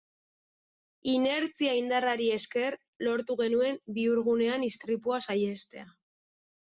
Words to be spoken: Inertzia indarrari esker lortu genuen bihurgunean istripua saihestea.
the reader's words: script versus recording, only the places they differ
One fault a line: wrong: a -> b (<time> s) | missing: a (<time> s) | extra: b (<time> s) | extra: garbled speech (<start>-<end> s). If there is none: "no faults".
no faults